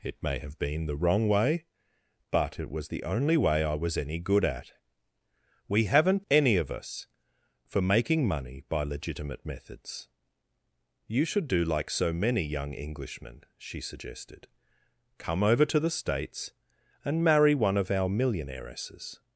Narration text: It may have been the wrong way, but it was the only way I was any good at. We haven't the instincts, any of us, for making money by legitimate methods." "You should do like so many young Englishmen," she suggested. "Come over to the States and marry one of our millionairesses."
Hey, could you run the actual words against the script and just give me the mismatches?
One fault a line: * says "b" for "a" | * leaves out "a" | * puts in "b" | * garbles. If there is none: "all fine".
* leaves out "the instincts"